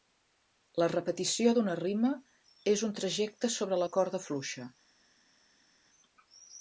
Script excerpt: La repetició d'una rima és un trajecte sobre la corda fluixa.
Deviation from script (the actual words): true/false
false